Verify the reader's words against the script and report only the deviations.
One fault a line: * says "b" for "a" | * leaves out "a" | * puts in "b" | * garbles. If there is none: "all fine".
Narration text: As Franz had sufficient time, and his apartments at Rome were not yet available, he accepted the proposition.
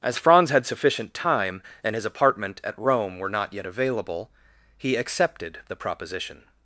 * says "apartment" for "apartments"